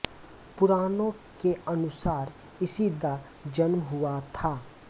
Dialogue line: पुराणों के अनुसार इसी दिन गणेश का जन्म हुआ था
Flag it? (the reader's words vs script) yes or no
yes